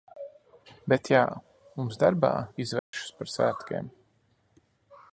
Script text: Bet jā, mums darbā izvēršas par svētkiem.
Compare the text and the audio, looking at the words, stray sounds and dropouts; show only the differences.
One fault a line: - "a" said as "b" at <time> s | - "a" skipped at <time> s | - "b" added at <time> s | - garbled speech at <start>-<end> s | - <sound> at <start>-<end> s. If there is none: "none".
- dropout at 2.8-2.9 s